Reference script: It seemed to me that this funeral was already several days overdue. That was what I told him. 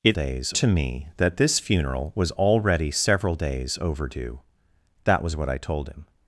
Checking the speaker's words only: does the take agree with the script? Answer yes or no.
no